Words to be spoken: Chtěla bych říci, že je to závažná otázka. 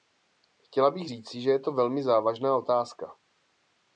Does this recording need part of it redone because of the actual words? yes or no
yes